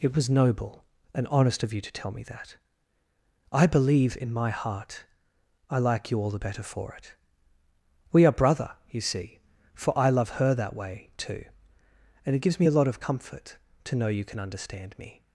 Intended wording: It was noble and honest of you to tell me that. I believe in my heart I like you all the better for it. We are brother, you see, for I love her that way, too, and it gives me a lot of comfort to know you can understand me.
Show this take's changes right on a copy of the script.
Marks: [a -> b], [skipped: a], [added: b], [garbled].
It was noble and honest of you to tell me that. I believe in my heart I like you all the better for it. We are brother, you see, for I love her that way, too, and it gives me a lot of comfort to know you can understand me.